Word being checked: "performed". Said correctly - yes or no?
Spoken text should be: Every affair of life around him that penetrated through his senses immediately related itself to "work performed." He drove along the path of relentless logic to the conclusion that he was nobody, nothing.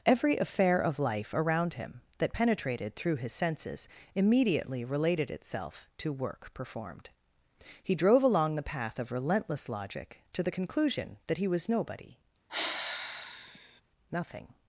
yes